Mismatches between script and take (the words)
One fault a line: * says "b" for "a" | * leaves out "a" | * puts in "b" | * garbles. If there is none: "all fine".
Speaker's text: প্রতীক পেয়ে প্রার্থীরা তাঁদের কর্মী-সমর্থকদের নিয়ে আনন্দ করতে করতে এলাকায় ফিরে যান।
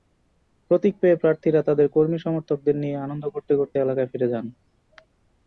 all fine